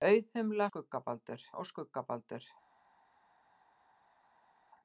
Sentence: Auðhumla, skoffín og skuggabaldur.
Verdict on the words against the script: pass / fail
fail